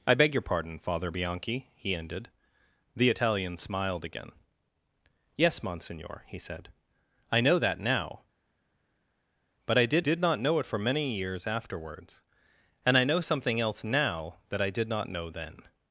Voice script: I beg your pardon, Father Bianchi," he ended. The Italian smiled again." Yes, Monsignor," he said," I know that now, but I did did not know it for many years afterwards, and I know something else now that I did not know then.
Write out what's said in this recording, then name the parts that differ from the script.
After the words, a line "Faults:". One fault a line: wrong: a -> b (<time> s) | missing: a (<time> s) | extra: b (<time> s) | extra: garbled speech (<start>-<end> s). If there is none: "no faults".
I beg your pardon, Father Bianchi," he ended. The Italian smiled again." Yes, Monsignor," he said," I know that now, but I did did not know it for many years afterwards, and I know something else now that I did not know then.
Faults:
no faults